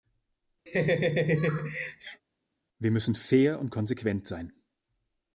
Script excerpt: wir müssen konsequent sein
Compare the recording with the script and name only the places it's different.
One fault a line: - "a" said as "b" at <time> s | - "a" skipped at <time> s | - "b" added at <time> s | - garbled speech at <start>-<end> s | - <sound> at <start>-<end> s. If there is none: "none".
- laugh at 0.7-2.2 s
- "fair und" added at 3.1 s